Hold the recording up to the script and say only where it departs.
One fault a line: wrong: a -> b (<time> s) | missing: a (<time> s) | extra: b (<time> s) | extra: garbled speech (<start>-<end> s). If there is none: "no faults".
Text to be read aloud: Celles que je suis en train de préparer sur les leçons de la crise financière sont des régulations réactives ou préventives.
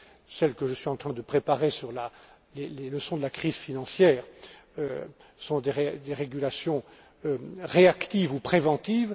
no faults